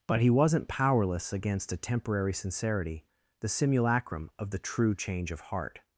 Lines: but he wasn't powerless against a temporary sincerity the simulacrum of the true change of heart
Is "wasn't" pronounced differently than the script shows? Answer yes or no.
no